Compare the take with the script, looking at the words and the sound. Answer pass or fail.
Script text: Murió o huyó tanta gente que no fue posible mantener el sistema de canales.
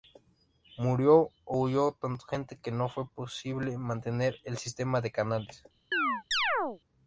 fail